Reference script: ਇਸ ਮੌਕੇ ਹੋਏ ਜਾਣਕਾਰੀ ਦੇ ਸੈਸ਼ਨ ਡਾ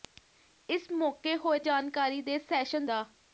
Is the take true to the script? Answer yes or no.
yes